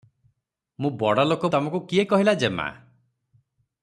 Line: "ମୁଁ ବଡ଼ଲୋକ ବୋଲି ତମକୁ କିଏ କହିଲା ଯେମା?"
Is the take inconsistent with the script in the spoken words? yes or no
yes